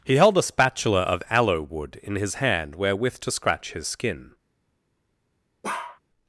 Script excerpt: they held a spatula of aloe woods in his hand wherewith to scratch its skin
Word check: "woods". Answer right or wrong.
wrong